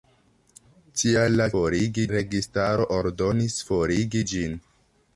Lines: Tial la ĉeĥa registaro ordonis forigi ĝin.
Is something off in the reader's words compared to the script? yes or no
yes